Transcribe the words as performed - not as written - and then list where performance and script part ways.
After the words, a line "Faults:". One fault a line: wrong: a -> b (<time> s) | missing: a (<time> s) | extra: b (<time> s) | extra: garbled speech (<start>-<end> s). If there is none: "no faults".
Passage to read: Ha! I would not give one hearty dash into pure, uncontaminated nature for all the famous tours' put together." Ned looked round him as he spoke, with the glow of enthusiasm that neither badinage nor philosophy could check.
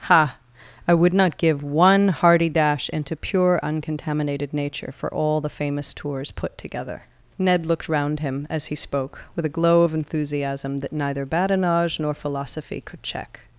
Ha! I would not give one hearty dash into pure, uncontaminated nature for all the famous tours' put together." Ned looked round him as he spoke, with a glow of enthusiasm that neither badinage nor philosophy could check.
Faults:
wrong: the -> a (9.4 s)